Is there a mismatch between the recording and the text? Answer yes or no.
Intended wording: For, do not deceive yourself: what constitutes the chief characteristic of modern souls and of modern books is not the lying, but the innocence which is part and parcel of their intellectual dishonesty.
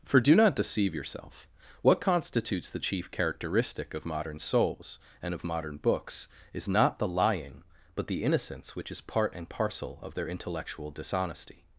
no